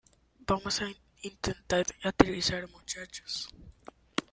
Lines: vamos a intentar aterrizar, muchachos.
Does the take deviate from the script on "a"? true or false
false